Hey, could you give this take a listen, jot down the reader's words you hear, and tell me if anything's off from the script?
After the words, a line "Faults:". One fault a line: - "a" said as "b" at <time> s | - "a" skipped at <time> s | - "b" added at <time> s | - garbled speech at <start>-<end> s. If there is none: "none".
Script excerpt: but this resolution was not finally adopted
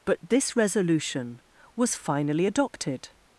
but this resolution was finally adopted
Faults:
- "not" skipped at 1.9 s